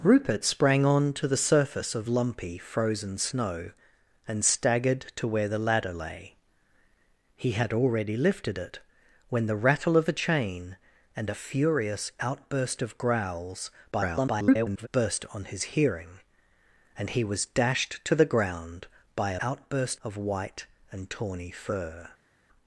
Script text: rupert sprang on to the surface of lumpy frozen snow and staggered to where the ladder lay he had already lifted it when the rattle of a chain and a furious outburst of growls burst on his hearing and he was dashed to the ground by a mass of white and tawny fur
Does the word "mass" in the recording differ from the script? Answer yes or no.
yes